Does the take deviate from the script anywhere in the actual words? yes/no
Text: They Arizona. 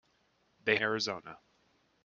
no